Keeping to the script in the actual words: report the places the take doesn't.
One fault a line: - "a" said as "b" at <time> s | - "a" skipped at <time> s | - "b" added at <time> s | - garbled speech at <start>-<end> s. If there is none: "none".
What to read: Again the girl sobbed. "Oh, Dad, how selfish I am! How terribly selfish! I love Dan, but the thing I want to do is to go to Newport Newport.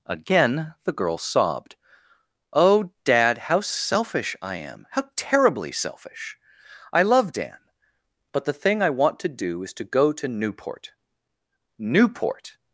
none